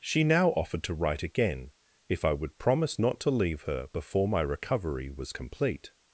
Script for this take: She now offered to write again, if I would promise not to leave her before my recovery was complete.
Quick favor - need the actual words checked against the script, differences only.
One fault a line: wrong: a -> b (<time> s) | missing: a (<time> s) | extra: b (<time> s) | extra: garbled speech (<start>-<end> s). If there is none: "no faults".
no faults